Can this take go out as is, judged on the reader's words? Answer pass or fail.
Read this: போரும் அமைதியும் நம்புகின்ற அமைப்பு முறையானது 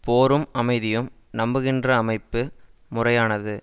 pass